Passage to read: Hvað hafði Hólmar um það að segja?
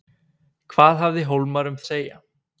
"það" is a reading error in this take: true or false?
true